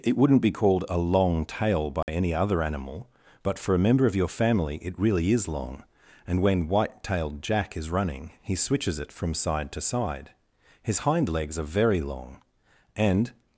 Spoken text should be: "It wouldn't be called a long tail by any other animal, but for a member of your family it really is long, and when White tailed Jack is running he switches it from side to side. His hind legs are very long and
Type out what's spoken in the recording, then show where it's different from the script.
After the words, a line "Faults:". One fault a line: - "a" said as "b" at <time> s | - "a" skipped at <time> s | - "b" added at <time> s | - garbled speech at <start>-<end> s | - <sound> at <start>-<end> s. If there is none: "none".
"It wouldn't be called a long tail by any other animal, but for a member of your family it really is long, and when White tailed Jack is running he switches it from side to side. His hind legs are very long and
Faults:
- dropout at 2.0-2.1 s